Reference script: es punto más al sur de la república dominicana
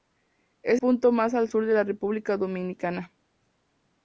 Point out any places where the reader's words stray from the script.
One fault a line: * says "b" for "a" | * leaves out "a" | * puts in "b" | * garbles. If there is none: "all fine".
all fine